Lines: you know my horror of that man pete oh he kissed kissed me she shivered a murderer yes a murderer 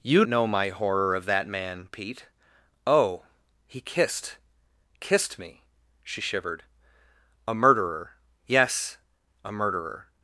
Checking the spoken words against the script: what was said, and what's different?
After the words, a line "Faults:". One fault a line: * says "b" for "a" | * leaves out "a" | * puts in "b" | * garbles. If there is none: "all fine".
you know my horror of that man pete oh he kissed kissed me she shivered a murderer yes a murderer
Faults:
all fine